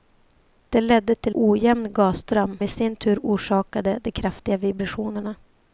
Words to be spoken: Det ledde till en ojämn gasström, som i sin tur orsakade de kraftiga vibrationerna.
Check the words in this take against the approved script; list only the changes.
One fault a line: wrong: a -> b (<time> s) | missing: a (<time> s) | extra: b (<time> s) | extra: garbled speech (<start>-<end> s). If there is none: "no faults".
missing: en (1.4 s)
missing: som (2.6 s)